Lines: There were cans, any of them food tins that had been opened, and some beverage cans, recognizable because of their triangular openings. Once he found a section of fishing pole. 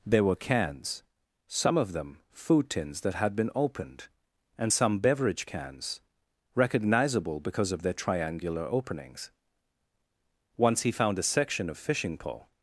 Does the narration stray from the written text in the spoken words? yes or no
yes